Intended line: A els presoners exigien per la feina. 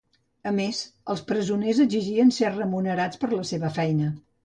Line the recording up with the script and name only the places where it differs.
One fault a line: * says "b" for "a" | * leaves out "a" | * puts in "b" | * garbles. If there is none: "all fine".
* puts in "més"
* puts in "ser remunerats"
* puts in "seva"